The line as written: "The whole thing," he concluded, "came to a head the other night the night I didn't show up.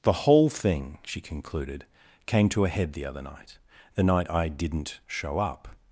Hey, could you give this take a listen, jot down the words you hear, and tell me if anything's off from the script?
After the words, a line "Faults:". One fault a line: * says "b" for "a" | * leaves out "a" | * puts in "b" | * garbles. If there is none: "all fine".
"The whole thing," she concluded, "came to a head the other night the night I didn't show up.
Faults:
* says "she" for "he"